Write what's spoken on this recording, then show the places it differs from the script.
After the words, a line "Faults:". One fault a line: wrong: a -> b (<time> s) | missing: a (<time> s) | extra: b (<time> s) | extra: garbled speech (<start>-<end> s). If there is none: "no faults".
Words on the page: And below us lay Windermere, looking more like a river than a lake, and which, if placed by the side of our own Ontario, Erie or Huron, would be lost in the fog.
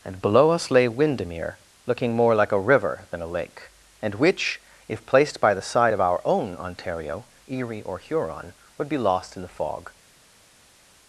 And below us lay Windermere, looking more like a river than a lake, and which, if placed by the side of our own Ontario, Erie or Huron, would be lost in the fog.
Faults:
no faults